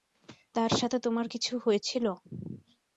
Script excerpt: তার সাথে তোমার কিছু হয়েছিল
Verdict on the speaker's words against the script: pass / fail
pass